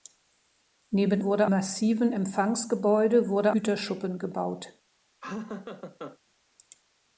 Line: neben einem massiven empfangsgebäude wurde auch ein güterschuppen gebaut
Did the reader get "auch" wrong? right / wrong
wrong